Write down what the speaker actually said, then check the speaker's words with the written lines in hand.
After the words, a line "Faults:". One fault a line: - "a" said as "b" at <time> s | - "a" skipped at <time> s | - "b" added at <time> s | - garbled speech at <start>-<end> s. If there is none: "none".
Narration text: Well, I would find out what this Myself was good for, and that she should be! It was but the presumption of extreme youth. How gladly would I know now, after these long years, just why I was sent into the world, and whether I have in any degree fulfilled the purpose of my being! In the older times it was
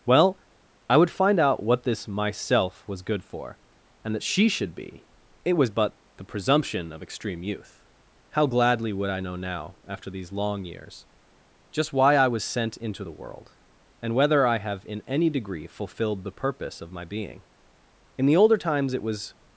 Well, I would find out what this Myself was good for, and that she should be! It was but the presumption of extreme youth. How gladly would I know now, after these long years, just why I was sent into the world, and whether I have in any degree fulfilled the purpose of my being! In the older times it was
Faults:
none